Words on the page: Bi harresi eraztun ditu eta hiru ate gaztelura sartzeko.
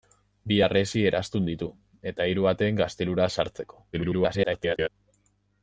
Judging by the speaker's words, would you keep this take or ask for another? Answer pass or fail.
fail